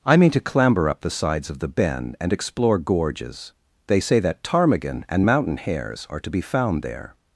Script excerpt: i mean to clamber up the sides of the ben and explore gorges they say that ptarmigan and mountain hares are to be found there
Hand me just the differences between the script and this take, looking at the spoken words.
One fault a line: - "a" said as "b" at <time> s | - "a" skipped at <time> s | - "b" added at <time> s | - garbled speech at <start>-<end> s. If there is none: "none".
none